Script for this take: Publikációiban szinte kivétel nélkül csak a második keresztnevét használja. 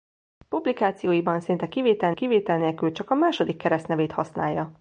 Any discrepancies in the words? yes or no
yes